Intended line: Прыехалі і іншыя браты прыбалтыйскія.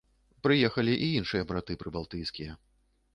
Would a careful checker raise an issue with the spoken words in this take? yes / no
no